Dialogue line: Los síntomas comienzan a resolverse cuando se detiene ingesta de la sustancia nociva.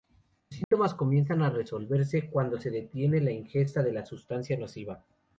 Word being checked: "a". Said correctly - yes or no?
yes